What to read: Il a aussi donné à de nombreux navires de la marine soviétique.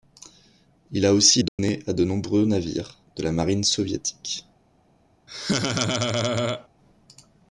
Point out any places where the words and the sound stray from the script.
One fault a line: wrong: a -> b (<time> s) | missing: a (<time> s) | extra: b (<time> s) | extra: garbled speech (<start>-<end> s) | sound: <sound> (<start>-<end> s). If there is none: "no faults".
sound: dropout (1.5-1.6 s)
sound: laugh (5.3-6.7 s)